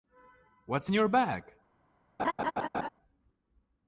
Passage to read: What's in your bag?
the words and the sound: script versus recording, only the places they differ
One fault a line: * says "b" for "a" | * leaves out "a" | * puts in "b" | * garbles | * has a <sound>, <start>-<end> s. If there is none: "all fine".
* has a laugh, 2.2-2.9 s